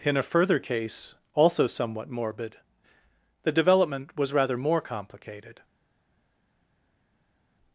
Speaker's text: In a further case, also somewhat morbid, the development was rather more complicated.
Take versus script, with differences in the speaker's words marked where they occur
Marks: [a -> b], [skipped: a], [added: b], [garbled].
In a further case, also somewhat morbid, the development was rather more complicated.